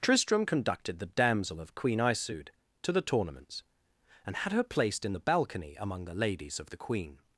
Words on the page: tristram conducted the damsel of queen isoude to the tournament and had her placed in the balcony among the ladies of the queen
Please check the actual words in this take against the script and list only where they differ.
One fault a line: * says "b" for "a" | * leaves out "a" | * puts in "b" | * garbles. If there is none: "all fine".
* says "tournaments" for "tournament"